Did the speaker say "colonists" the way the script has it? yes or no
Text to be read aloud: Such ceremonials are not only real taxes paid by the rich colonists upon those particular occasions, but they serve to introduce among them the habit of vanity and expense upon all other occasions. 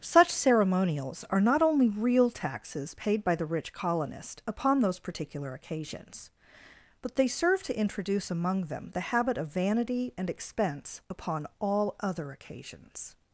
no